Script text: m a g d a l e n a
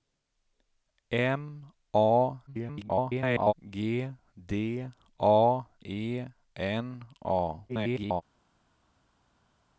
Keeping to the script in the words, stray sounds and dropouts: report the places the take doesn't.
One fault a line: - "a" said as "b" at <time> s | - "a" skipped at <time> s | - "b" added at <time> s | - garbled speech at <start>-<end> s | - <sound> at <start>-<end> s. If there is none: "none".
- garbled speech at 2.5-3.5 s
- "l" skipped at 5.7 s
- garbled speech at 7.7-8.2 s